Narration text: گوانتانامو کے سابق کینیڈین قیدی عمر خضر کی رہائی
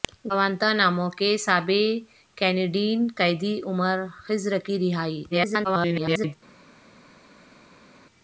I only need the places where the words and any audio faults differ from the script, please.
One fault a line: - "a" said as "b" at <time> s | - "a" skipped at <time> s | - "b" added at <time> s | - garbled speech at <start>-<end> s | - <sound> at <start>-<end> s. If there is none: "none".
- garbled speech at 5.3-6.4 s